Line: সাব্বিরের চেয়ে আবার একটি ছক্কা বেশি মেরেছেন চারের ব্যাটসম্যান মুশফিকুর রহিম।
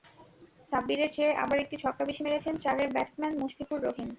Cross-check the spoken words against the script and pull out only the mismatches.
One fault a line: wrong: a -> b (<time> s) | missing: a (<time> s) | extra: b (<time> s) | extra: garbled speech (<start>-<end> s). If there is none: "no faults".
no faults